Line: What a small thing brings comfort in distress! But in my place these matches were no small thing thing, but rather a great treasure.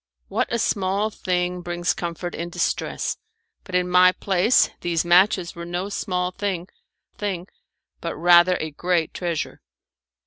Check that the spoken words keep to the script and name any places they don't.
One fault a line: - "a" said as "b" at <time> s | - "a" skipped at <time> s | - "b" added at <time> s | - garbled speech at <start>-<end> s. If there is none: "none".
none